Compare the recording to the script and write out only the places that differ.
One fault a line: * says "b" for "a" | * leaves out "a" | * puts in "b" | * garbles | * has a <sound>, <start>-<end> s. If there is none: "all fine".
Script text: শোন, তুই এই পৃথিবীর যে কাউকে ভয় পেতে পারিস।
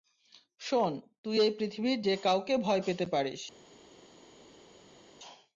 all fine